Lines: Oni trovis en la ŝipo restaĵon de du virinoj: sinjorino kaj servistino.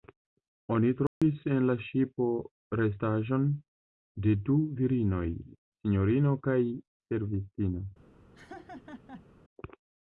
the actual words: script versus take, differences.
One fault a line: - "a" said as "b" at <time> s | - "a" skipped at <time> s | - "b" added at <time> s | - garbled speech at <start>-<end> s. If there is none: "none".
none